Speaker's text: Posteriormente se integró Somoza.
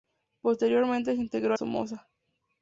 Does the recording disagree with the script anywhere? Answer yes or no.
no